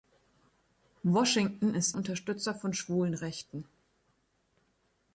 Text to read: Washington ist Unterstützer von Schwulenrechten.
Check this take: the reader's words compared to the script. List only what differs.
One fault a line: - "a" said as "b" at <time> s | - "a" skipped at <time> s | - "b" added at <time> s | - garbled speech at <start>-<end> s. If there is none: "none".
none